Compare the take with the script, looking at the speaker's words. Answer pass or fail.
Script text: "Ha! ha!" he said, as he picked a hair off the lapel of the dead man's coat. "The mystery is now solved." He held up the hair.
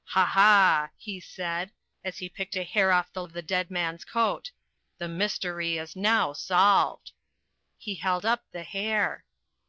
fail